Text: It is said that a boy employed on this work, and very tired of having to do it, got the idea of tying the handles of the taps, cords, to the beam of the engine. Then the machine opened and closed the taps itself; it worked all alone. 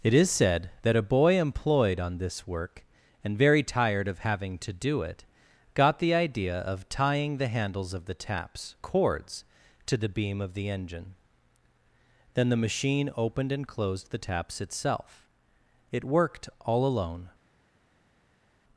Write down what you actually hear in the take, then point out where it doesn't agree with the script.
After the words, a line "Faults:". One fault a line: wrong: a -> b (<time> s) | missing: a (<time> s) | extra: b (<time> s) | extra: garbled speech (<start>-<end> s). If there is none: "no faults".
It is said that a boy employed on this work, and very tired of having to do it, got the idea of tying the handles of the taps, cords, to the beam of the engine. Then the machine opened and closed the taps itself; it worked all alone.
Faults:
no faults